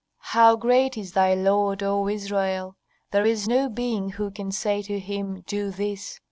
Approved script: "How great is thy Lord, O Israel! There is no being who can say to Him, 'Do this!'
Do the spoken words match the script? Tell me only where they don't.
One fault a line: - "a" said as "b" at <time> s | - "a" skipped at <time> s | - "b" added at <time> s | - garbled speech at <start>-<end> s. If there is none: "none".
none